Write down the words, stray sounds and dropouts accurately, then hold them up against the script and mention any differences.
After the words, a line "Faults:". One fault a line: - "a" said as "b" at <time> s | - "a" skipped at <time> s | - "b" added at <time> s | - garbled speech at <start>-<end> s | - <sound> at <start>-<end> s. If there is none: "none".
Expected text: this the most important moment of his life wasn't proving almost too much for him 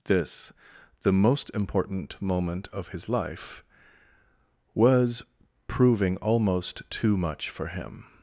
this the most important moment of his life was proving almost too much for him
Faults:
- "wasn't" said as "was" at 4.7 s